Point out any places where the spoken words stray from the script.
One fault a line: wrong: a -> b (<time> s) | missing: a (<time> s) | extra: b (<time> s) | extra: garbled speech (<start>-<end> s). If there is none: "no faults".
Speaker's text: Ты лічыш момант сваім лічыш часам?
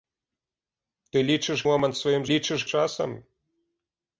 no faults